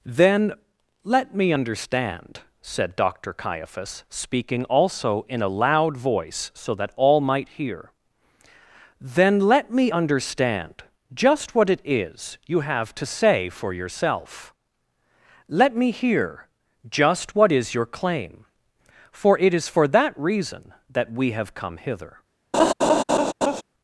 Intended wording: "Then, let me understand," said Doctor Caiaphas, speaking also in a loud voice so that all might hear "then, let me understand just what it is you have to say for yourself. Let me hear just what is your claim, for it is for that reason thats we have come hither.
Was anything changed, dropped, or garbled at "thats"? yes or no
yes